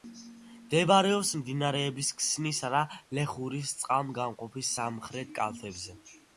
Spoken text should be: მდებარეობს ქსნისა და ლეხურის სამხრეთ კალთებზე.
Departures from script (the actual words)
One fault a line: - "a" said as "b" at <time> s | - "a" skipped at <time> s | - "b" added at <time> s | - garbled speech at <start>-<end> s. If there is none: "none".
- "მდინარეების" added at 1.4 s
- "წყალგამყოფის" added at 3.8 s